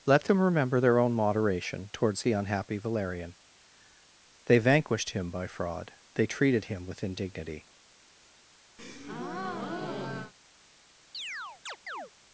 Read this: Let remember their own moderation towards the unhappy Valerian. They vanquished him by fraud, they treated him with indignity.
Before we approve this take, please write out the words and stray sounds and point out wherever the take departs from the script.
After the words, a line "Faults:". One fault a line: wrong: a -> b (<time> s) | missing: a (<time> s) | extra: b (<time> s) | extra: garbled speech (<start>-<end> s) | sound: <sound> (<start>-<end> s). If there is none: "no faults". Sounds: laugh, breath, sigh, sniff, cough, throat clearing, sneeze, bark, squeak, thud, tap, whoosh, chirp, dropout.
Let them remember their own moderation towards the unhappy Valerian. They vanquished him by fraud, they treated him with indignity.
Faults:
extra: them (0.2 s)
sound: breath (8.8-10.3 s)
sound: chirp (11.1-12.1 s)